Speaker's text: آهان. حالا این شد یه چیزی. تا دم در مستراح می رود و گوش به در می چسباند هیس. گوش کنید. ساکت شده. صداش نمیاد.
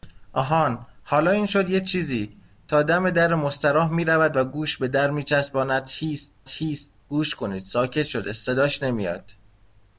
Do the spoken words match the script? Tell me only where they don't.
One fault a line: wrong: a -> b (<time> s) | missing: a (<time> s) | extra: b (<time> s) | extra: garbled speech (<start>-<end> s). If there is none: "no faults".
extra: هیس (6.5 s)